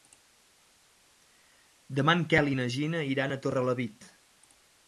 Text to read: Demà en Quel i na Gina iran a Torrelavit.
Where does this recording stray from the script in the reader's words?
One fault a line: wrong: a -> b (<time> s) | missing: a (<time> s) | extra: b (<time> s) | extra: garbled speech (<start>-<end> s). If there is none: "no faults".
no faults